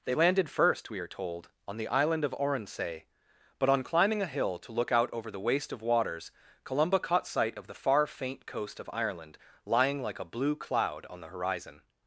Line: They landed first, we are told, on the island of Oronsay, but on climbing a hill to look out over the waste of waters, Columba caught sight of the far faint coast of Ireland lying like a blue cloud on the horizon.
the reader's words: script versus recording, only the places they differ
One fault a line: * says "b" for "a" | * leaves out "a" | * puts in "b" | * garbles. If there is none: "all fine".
all fine